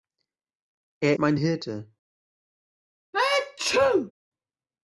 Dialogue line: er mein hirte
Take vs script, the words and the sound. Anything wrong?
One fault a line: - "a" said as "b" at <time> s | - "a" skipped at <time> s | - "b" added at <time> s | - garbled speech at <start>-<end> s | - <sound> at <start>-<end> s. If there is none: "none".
- sneeze at 3.1-4.1 s